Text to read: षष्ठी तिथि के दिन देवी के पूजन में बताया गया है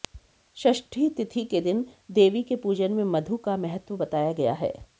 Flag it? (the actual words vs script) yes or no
yes